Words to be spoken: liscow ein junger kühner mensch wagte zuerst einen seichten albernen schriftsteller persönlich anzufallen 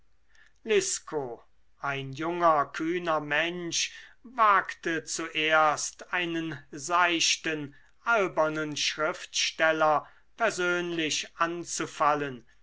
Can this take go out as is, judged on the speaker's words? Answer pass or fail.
pass